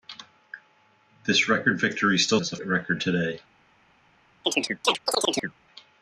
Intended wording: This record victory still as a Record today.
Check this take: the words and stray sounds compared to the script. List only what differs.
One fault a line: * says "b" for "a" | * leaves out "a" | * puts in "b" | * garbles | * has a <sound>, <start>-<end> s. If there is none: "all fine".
* has a chirp, 4.4-5.6 s